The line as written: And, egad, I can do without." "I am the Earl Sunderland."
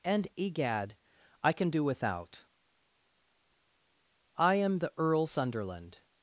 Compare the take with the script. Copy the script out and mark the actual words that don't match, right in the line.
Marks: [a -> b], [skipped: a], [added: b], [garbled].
And, egad, I can do without." "I am the Earl Sunderland."